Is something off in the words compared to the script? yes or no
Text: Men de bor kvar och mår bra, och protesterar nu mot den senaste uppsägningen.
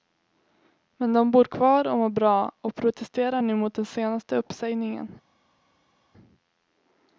no